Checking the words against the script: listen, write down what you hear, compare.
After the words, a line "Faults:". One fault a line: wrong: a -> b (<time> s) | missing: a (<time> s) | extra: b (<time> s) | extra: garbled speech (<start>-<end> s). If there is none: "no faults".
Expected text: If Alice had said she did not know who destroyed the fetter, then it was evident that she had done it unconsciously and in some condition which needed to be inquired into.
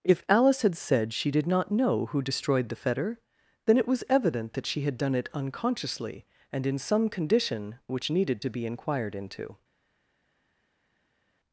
If Alice had said she did not know who destroyed the fetter, then it was evident that she had done it unconsciously and in some condition which needed to be inquired into.
Faults:
no faults